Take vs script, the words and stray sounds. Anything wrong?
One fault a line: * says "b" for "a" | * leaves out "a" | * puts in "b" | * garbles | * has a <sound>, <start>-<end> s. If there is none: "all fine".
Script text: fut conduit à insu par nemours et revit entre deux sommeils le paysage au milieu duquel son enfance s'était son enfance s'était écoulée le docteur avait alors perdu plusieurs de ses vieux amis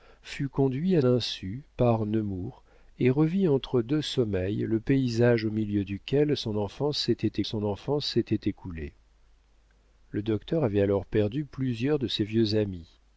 all fine